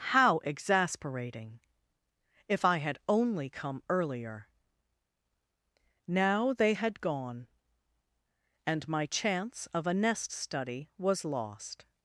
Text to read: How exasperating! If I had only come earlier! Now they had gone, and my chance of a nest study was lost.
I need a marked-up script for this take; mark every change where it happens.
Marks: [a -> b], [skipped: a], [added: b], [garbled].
How exasperating! If I had only come earlier! Now they had gone, and my chance of a nest study was lost.